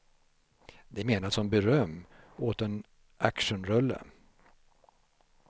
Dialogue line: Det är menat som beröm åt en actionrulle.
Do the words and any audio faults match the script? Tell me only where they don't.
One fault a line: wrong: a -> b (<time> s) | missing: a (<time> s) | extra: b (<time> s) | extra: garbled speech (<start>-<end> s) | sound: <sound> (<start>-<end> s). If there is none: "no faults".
no faults